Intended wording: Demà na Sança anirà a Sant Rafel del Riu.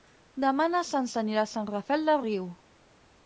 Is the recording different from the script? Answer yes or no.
no